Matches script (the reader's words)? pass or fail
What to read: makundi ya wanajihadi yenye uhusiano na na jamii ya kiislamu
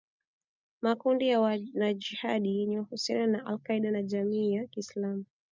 fail